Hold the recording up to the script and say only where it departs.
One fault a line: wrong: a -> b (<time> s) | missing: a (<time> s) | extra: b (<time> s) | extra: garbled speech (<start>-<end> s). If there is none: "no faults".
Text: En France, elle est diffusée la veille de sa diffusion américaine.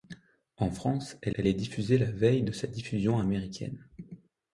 extra: elle (1.3 s)